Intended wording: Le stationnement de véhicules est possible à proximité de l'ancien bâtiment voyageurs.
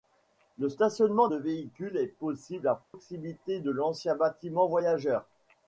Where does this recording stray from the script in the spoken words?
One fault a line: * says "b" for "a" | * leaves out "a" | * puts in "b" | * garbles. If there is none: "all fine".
all fine